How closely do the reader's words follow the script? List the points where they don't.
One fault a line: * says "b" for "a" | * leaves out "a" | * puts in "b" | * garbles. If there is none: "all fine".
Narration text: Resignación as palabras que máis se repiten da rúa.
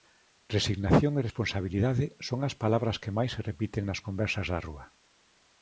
* puts in "e responsabilidade son"
* puts in "nas conversas"